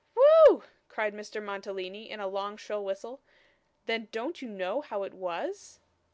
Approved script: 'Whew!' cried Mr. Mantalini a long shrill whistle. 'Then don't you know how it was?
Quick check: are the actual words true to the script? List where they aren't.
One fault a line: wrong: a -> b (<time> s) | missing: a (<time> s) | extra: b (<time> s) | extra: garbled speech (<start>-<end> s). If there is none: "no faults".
extra: in (2.1 s)